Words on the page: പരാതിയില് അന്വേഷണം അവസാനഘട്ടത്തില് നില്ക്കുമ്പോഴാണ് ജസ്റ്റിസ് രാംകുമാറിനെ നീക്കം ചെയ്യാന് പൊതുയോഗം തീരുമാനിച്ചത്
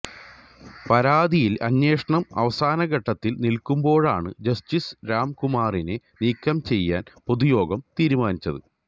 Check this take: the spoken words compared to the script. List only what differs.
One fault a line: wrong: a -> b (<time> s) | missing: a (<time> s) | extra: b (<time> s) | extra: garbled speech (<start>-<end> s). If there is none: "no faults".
no faults